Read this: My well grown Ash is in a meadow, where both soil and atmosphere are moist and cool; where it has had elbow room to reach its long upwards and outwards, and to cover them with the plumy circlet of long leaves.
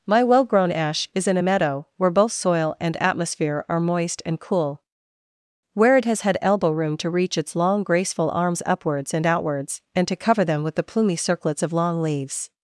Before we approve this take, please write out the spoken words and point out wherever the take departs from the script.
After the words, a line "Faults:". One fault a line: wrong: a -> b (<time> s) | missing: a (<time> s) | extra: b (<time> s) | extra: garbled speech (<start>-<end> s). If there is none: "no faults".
My well grown Ash is in a meadow, where both soil and atmosphere are moist and cool; where it has had elbow room to reach its long graceful arms upwards and outwards, and to cover them with the plumy circlets of long leaves.
Faults:
extra: graceful arms (7.8 s)
wrong: circlet -> circlets (11.2 s)